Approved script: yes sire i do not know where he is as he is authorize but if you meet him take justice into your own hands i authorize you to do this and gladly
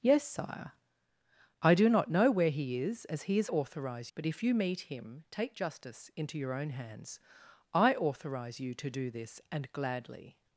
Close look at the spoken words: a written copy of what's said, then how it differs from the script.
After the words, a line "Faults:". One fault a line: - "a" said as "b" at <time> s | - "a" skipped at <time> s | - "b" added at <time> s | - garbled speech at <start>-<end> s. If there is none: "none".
yes sire i do not know where he is as he is authorize but if you meet him take justice into your own hands i authorize you to do this and gladly
Faults:
none